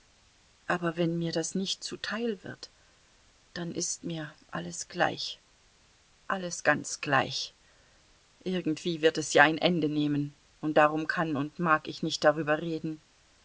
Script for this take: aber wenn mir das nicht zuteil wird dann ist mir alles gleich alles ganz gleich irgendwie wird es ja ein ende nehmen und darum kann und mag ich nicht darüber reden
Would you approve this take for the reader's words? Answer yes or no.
yes